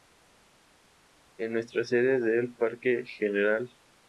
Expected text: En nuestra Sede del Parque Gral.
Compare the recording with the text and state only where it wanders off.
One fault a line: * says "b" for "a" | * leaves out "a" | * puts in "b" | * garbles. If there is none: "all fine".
all fine